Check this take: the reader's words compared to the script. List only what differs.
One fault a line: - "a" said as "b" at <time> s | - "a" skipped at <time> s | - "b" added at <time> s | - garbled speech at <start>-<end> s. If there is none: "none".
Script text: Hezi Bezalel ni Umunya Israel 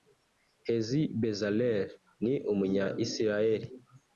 none